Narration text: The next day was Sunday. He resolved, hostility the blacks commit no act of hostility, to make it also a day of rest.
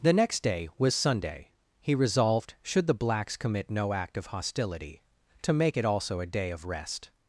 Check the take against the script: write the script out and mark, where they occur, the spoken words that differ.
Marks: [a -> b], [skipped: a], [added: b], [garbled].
The next day was Sunday. He resolved, [hostility -> should] the blacks commit no act of hostility, to make it also a day of rest.